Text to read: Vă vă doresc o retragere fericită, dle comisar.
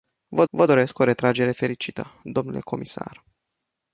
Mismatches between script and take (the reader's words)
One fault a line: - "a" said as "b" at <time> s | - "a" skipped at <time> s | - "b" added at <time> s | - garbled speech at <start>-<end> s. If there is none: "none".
none